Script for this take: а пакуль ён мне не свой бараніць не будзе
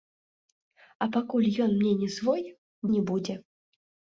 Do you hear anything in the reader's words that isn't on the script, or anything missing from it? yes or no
yes